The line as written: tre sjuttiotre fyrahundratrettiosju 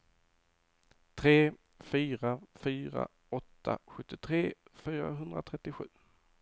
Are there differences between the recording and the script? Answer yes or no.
yes